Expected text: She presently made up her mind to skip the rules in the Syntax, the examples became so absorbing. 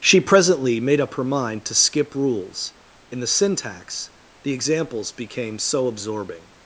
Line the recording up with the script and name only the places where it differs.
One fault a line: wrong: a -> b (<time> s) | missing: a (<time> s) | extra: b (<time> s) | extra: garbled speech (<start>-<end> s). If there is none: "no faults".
missing: the (2.1 s)